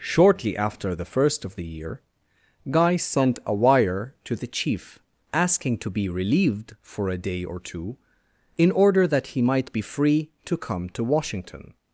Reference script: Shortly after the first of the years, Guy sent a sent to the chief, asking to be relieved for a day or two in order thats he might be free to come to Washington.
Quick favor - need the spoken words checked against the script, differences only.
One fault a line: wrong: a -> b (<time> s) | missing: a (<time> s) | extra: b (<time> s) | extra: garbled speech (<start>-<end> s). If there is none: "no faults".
wrong: years -> year (1.6 s)
wrong: sent -> wire (3.5 s)
wrong: thats -> that (9.1 s)